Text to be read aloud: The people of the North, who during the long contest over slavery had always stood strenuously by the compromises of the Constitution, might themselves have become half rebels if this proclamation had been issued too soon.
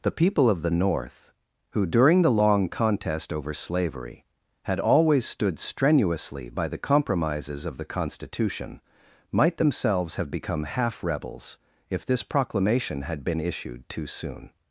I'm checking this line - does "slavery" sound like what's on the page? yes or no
yes